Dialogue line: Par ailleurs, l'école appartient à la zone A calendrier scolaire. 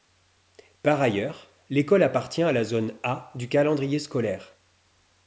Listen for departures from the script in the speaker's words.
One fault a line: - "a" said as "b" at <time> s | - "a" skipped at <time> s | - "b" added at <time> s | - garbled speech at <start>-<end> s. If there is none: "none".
- "du" added at 3.4 s